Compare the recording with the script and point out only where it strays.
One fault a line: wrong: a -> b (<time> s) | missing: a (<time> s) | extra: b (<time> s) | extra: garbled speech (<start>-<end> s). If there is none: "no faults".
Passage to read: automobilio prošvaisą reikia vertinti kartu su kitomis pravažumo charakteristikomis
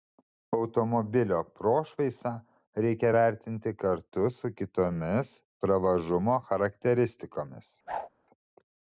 no faults